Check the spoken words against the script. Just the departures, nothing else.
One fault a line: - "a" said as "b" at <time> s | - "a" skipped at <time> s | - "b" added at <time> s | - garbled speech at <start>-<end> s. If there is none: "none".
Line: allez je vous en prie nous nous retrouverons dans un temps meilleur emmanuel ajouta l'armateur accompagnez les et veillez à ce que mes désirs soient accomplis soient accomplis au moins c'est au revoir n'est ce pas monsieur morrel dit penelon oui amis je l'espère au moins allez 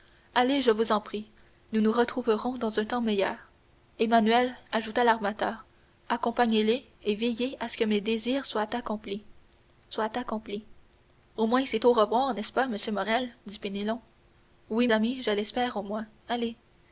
none